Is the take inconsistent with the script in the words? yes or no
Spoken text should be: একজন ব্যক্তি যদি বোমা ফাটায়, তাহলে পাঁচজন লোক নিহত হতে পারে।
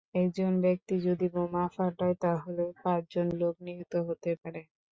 no